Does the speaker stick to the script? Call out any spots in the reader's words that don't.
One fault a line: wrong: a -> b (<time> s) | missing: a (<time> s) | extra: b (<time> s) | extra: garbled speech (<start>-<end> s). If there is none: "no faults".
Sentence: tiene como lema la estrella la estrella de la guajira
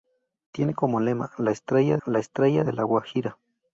no faults